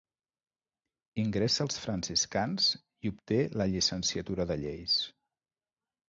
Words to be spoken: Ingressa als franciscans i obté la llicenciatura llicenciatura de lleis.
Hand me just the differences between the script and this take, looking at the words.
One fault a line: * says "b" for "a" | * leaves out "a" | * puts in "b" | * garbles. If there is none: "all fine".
* leaves out "llicenciatura"